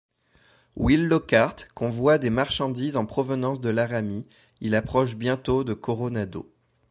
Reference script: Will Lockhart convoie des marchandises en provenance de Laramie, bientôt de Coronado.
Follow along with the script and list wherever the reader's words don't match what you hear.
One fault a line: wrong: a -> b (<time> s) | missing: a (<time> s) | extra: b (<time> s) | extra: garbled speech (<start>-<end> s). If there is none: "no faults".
extra: il approche (4.6 s)